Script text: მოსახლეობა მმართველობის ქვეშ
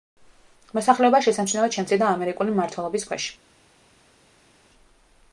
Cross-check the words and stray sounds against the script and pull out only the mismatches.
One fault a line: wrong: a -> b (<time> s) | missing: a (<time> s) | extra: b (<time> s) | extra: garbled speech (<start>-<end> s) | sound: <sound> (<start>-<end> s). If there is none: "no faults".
extra: შესამჩნევად შემცირდა ამერიკული (1.2 s)